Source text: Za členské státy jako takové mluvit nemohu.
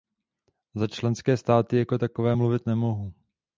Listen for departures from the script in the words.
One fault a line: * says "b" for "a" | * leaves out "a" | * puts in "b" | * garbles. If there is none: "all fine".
all fine